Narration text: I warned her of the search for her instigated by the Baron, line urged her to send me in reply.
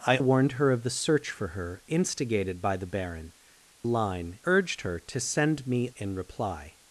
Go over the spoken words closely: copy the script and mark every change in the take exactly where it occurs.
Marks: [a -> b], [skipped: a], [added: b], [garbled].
I warned her of the search for her instigated by the Baron, line urged her to send me in reply.